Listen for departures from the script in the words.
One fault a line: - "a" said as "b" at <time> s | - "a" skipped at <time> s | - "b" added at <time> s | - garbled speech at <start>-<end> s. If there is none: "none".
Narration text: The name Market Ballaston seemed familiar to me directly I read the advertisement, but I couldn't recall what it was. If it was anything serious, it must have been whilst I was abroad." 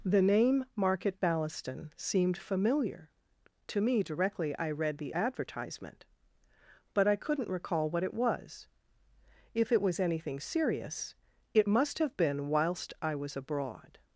none